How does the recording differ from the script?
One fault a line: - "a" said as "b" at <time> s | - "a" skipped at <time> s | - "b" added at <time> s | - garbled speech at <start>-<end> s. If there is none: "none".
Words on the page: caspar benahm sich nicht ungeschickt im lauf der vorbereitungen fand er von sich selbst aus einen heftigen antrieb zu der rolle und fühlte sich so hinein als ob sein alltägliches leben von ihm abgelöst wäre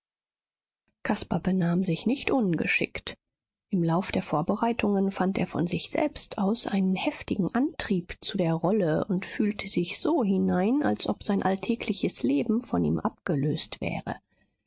none